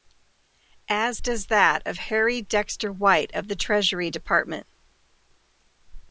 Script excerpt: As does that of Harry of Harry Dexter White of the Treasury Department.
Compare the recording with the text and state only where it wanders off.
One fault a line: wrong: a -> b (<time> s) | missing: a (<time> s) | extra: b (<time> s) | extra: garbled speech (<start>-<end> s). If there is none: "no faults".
missing: of Harry (2.4 s)